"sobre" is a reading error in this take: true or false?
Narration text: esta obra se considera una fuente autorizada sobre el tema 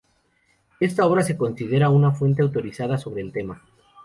false